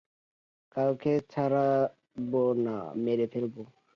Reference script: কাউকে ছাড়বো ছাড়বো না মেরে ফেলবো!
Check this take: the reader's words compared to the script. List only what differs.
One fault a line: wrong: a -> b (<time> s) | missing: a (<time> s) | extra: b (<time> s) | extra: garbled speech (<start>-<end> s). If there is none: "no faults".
missing: ছাড়বো (2.4 s)